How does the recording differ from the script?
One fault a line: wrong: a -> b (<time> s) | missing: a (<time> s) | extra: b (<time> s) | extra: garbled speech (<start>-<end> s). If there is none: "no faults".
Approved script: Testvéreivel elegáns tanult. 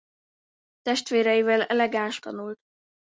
no faults